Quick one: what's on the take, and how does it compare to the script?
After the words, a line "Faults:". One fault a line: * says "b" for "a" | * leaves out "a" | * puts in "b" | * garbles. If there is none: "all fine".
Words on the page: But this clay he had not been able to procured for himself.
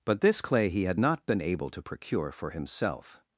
But this clay he had not been able to procure for himself.
Faults:
* says "procure" for "procured"